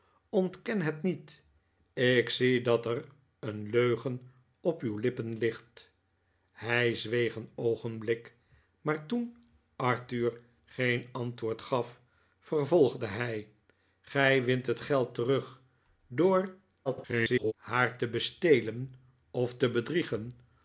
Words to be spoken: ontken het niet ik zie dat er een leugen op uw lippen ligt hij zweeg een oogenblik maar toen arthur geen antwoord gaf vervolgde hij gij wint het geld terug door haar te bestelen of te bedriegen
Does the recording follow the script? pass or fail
fail